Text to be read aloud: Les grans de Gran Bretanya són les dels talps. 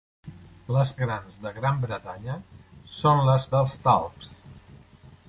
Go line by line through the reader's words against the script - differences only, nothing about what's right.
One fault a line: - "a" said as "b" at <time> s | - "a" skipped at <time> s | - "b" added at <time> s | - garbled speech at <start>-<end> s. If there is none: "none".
none